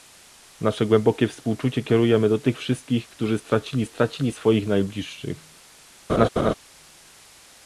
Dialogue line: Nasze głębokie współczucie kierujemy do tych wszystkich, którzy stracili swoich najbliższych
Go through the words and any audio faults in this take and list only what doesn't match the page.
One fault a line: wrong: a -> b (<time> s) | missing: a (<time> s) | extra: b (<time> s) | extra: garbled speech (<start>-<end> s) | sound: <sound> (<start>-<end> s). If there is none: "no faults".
extra: stracili (3.8 s)
sound: laugh (6.1-6.5 s)